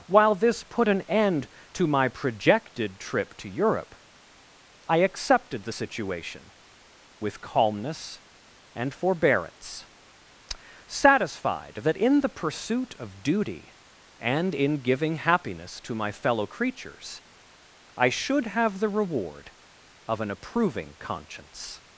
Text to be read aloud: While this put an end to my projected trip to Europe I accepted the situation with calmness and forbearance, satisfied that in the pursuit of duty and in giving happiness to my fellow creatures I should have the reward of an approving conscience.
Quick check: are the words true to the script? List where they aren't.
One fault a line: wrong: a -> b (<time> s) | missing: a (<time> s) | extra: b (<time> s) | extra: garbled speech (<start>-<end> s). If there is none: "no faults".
no faults